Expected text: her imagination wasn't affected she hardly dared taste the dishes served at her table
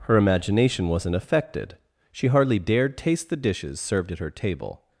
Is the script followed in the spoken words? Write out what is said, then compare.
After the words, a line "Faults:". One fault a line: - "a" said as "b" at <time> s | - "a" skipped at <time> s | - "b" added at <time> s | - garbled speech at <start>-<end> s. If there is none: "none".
her imagination wasn't affected she hardly dared taste the dishes served at her table
Faults:
none